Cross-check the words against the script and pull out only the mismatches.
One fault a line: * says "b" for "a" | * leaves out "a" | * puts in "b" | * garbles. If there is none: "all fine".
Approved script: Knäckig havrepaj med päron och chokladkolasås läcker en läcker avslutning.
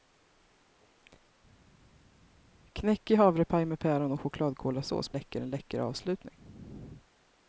all fine